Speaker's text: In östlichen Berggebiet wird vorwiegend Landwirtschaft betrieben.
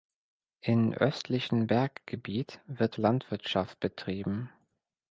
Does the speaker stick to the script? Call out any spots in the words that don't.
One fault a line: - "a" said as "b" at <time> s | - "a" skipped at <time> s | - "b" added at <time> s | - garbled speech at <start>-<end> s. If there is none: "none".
- "vorwiegend" skipped at 3.0 s